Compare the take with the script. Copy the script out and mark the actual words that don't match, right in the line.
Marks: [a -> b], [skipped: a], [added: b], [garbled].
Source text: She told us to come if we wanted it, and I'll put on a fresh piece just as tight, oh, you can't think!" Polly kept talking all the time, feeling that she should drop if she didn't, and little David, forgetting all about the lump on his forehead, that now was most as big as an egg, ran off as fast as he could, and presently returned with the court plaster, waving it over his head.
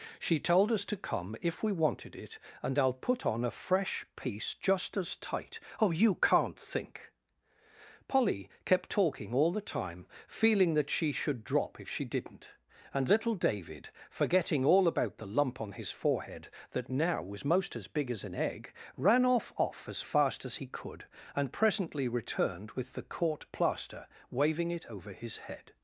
She told us to come if we wanted it, and I'll put on a fresh piece just as tight, oh, you can't think!" Polly kept talking all the time, feeling that she should drop if she didn't, and little David, forgetting all about the lump on his forehead, that now was most as big as an egg, ran off [added: off] as fast as he could, and presently returned with the court plaster, waving it over his head.